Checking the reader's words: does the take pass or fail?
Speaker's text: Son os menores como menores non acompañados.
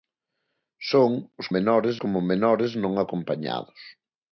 pass